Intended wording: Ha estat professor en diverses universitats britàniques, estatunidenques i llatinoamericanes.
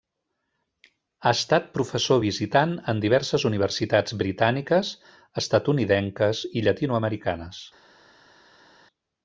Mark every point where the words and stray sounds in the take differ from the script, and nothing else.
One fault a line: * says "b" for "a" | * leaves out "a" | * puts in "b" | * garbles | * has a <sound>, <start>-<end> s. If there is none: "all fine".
* puts in "visitant"